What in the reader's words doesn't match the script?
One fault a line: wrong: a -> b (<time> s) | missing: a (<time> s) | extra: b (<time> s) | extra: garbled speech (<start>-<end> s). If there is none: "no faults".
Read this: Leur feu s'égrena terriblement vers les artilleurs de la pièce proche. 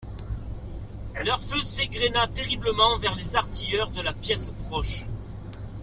no faults